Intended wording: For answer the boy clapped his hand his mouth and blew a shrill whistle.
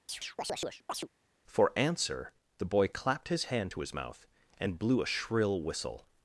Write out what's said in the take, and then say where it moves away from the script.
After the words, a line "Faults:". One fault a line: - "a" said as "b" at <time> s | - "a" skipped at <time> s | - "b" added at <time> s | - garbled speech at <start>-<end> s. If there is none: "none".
For answer the boy clapped his hand to his mouth and blew a shrill whistle.
Faults:
- "to" added at 3.7 s